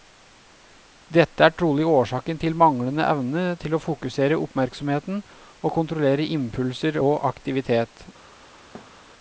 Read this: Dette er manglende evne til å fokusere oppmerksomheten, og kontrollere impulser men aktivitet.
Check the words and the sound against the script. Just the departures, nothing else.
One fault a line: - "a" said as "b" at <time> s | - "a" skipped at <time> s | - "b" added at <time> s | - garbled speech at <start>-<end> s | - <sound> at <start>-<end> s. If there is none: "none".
- "trolig årsaken til" added at 1.6 s
- "men" said as "og" at 7.0 s
- thud at 8.7-9.0 s